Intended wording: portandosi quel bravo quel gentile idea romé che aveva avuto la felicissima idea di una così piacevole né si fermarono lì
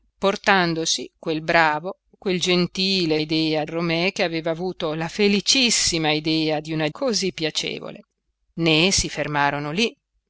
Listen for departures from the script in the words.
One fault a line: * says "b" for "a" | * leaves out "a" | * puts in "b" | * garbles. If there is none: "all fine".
all fine